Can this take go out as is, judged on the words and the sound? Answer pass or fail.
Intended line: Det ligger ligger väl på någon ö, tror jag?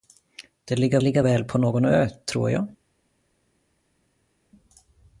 pass